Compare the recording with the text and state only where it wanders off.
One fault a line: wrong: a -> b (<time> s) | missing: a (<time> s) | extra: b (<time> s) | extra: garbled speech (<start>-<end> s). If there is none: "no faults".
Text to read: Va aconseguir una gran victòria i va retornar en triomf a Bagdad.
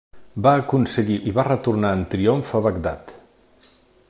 missing: una gran victòria (1.2 s)